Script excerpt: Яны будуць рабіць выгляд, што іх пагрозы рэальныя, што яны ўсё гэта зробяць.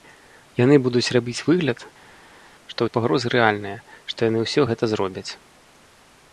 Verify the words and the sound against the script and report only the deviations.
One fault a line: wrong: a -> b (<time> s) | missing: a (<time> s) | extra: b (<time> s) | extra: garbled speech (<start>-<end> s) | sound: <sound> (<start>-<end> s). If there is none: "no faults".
no faults